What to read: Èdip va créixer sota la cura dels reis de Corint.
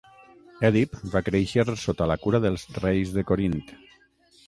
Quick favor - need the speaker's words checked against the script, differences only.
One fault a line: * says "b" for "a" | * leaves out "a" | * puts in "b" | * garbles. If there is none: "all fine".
all fine